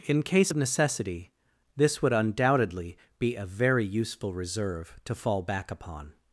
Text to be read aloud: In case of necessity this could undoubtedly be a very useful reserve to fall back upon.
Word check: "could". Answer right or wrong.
wrong